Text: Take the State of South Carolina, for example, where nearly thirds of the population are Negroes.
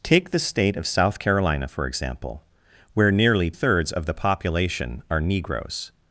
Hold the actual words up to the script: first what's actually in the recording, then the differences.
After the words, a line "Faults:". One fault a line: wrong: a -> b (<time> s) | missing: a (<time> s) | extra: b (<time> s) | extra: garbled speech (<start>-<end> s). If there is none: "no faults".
Take the State of South Carolina, for example, where nearly thirds of the population are Negroes.
Faults:
no faults